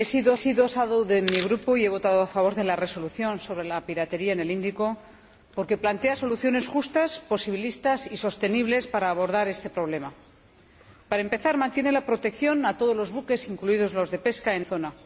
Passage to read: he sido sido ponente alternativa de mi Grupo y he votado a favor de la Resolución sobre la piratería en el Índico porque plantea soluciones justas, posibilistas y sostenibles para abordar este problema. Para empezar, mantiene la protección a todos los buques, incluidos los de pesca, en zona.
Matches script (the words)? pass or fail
pass